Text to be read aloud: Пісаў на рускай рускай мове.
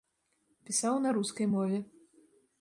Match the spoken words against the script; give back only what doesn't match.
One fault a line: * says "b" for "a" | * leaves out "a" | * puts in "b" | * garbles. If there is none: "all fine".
* leaves out "рускай"